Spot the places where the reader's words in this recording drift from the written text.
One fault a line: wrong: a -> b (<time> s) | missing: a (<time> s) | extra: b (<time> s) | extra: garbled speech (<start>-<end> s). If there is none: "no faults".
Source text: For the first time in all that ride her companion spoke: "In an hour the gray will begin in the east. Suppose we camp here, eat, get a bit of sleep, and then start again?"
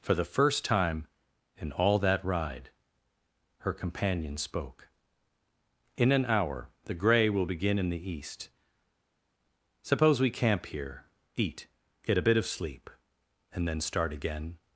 no faults